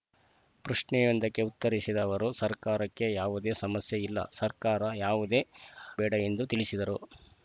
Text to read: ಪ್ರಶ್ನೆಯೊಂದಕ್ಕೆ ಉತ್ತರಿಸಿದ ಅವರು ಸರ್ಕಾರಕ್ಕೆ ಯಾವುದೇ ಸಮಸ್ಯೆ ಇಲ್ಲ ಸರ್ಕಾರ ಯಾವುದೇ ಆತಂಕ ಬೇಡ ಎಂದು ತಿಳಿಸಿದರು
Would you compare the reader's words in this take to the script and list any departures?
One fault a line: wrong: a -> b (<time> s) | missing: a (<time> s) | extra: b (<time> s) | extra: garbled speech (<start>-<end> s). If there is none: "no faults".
missing: ಆತಂಕ (5.4 s)